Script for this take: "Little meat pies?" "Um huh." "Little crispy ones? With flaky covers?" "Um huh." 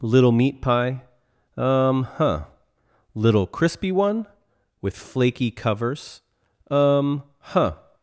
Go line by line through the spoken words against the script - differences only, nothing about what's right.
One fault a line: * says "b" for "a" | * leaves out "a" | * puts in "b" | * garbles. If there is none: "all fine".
* says "pie" for "pies"
* says "one" for "ones"